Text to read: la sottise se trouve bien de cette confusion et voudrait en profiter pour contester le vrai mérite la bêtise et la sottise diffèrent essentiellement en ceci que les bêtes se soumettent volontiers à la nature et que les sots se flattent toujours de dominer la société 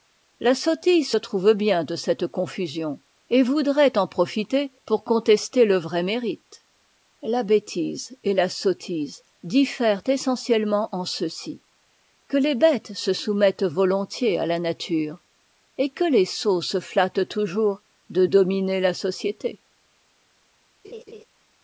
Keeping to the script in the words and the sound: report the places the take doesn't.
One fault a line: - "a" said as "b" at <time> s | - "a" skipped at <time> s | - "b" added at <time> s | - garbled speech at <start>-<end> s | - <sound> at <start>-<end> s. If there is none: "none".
- laugh at 20.8-21.2 s